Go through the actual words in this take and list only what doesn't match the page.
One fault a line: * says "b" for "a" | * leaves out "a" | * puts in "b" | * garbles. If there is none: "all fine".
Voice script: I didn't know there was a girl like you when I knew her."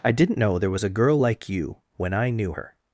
all fine